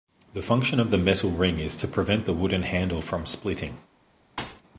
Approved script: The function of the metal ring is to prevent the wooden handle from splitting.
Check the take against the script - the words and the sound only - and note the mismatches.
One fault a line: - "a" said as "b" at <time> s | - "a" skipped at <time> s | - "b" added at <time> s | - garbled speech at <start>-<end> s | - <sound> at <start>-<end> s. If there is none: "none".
- thud at 4.4-4.6 s